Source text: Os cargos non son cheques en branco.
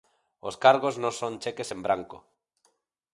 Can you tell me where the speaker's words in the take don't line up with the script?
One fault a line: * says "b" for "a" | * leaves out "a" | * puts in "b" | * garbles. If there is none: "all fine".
all fine